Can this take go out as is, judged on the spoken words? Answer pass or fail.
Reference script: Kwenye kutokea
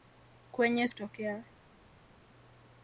pass